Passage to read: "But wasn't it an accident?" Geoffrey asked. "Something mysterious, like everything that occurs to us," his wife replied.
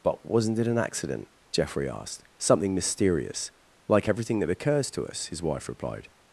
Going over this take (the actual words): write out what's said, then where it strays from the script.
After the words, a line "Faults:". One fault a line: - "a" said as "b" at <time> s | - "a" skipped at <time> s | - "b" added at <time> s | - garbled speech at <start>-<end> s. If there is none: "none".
"But wasn't it an accident?" Geoffrey asked. "Something mysterious, like everything that occurs to us," his wife replied.
Faults:
none